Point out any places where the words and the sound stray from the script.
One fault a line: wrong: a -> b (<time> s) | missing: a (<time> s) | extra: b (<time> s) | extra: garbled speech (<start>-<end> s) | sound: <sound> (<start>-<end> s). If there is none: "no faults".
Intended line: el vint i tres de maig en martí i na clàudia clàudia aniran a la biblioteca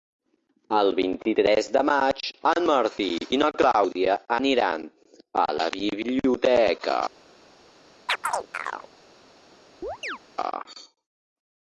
missing: clàudia (4.2 s)
sound: chirp (8.1-8.9 s)
sound: chirp (9.8-10.2 s)